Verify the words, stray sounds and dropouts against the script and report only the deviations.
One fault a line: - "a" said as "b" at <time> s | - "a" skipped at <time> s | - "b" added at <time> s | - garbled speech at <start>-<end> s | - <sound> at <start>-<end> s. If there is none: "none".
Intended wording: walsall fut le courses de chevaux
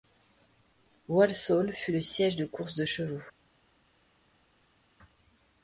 - "siège de" added at 2.0 s